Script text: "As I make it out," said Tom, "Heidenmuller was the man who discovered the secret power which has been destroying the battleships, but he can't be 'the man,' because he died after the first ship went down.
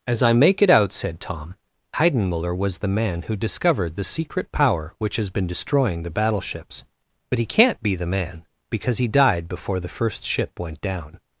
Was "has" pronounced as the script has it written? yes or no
yes